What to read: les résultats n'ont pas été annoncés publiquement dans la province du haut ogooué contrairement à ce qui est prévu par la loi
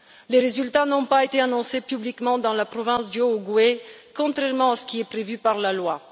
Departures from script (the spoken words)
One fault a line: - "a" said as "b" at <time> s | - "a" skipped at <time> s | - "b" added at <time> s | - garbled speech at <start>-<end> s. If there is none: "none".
none